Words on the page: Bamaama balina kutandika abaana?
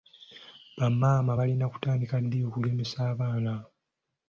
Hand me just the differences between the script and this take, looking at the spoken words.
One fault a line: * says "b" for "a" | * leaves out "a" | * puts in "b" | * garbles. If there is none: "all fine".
* puts in "ddi okugemesa"